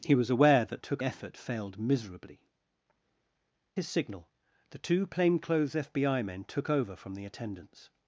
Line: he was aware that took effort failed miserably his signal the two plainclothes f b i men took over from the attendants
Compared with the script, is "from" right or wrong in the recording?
right